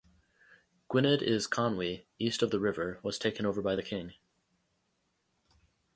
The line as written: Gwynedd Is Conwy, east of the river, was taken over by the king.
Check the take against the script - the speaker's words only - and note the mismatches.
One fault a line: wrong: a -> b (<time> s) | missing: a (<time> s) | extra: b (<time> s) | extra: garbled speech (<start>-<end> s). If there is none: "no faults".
no faults